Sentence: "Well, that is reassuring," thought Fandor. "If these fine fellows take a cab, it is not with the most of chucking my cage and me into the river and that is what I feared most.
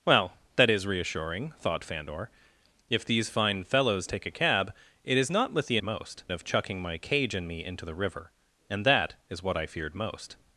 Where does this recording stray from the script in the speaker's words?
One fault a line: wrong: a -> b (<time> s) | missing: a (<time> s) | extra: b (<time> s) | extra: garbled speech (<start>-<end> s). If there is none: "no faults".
no faults